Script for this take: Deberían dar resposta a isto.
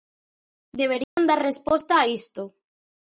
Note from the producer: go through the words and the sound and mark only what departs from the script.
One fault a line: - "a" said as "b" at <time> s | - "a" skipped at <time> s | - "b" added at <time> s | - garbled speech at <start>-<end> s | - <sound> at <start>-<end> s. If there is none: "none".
- dropout at 1.0-1.2 s